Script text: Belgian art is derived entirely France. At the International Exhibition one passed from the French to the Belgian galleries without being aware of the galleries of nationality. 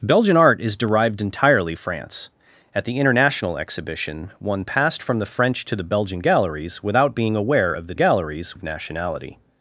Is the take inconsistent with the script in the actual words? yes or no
no